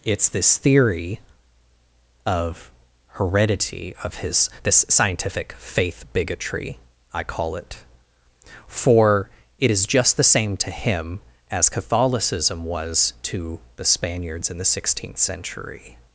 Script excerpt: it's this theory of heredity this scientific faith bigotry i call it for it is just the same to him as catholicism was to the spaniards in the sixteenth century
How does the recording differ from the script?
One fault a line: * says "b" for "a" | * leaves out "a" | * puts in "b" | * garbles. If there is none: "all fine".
* puts in "of his"